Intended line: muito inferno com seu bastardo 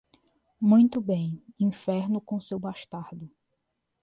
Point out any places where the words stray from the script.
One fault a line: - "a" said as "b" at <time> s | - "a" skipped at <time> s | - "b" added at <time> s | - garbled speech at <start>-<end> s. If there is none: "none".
- "bem" added at 1.0 s